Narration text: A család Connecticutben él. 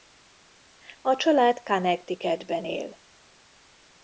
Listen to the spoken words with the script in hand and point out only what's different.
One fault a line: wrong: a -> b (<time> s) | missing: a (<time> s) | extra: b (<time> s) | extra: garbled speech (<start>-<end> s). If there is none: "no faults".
no faults